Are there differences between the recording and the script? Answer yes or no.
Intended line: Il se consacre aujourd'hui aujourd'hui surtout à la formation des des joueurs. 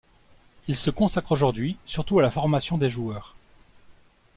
yes